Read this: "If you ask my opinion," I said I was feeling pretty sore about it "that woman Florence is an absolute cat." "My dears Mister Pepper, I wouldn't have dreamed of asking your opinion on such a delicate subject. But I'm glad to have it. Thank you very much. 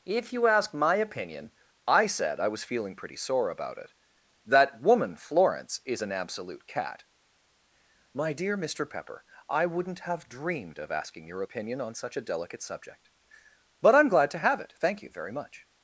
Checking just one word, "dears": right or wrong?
wrong